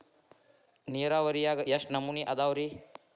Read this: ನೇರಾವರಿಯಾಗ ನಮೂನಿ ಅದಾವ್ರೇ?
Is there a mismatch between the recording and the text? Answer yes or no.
yes